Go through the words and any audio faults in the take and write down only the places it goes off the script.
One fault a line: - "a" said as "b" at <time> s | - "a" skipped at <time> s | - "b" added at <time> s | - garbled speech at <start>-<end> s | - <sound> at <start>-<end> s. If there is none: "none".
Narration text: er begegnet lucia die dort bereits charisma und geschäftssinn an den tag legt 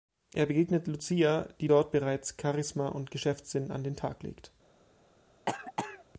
- cough at 5.5-6.0 s